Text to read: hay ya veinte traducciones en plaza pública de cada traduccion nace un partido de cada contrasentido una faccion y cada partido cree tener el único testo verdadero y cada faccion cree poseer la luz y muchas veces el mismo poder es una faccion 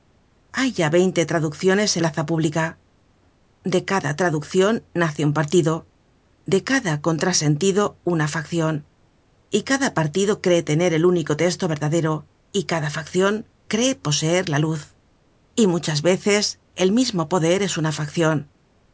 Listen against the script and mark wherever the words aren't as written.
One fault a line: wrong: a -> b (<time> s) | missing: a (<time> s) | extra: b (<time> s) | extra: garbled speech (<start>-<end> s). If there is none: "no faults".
no faults